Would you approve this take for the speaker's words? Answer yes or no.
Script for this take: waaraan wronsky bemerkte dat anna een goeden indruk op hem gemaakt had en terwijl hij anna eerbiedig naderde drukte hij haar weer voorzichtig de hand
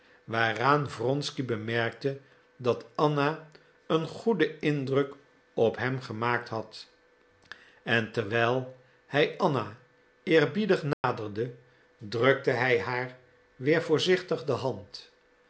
yes